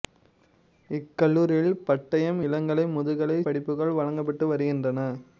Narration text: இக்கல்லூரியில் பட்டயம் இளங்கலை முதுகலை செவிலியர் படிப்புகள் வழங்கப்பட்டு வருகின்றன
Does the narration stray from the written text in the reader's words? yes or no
yes